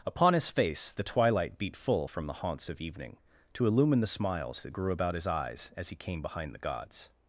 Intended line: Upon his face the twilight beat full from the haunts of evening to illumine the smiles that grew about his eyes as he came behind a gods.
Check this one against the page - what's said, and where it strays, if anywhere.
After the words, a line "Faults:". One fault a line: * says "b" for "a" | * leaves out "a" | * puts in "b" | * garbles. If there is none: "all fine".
Upon his face the twilight beat full from the haunts of evening to illumine the smiles that grew about his eyes as he came behind the gods.
Faults:
* says "the" for "a"